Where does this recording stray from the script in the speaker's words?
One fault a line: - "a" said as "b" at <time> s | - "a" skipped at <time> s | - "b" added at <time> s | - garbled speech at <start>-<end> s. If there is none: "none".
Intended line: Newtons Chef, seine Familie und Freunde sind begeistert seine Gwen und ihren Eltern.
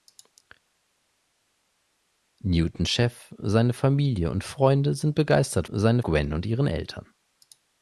none